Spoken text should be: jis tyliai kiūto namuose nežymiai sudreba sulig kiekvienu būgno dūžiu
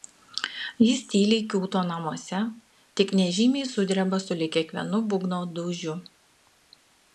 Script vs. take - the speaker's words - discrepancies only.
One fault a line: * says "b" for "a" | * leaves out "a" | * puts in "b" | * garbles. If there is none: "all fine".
* puts in "tik"